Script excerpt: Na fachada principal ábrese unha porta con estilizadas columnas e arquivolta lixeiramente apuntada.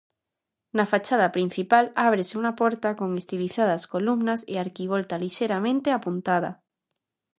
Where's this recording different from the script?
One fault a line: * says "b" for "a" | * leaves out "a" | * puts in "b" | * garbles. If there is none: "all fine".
all fine